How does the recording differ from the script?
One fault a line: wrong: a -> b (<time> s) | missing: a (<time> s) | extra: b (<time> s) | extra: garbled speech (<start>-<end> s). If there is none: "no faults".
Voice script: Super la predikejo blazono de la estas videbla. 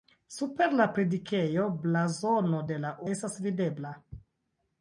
no faults